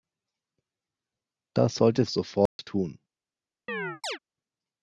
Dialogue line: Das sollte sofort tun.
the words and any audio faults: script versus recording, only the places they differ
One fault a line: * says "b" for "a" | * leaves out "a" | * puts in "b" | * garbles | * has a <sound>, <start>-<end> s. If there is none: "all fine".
* has a dropout, 2.5-2.6 s
* has a chirp, 3.7-4.2 s